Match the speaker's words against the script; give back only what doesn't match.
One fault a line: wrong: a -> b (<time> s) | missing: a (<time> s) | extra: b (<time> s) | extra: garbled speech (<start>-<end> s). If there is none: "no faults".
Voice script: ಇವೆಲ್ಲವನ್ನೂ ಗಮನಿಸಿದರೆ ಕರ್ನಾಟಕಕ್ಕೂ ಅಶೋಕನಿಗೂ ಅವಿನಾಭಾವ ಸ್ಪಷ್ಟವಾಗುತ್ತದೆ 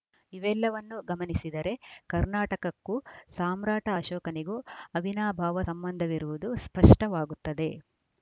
extra: ಸಾಮ್ರಾಟ (3.3 s)
extra: ಸಂಬಂಧವಿರುವುದು (5.7 s)